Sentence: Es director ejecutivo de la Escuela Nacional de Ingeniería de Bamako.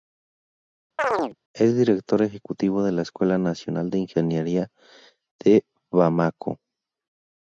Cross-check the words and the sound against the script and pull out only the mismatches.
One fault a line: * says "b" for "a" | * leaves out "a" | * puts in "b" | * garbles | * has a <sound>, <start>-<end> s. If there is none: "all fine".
* has a chirp, 1.0-1.4 s